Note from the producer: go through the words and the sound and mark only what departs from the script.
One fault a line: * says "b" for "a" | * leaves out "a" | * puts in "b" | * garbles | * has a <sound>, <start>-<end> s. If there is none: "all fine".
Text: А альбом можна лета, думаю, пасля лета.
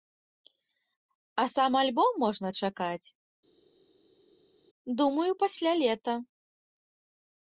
* puts in "сам"
* says "чакаць" for "лета"